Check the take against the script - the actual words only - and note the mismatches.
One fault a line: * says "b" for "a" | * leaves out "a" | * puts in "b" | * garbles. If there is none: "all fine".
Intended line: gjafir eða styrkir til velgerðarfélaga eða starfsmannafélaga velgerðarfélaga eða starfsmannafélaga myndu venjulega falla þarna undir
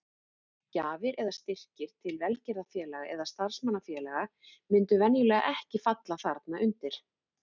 * leaves out "velgerðarfélaga eða starfsmannafélaga"
* puts in "ekki"